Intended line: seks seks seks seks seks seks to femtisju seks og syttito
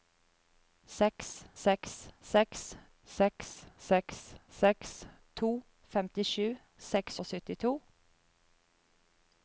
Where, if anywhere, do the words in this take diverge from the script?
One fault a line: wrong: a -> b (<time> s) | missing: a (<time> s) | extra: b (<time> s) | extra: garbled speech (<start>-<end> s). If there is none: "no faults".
no faults